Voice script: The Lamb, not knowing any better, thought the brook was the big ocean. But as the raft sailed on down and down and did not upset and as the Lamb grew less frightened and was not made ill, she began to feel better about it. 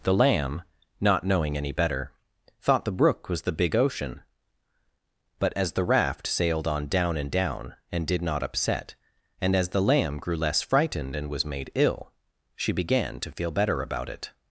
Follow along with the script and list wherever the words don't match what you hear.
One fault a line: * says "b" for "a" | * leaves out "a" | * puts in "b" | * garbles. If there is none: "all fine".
* leaves out "not"